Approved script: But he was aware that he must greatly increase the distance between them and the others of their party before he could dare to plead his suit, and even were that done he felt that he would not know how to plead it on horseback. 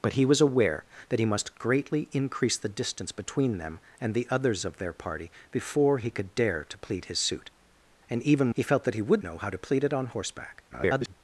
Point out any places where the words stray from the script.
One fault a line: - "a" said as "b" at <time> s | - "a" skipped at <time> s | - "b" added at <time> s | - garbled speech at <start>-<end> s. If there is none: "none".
- "were that done" skipped at 8.5 s
- "not" skipped at 9.2 s
- garbled speech at 10.7-11.1 s